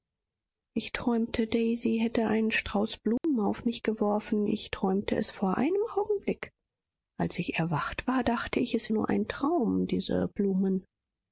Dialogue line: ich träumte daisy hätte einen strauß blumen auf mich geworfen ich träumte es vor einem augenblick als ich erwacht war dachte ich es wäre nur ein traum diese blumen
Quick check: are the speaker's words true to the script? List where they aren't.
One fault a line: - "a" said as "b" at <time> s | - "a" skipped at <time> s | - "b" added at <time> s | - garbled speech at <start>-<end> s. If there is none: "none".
- "wäre" skipped at 8.9 s